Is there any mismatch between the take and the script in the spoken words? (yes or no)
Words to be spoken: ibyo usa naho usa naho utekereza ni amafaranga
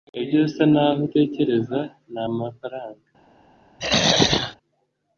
yes